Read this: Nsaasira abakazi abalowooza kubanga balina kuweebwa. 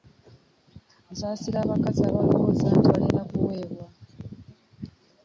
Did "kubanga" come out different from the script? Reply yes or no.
yes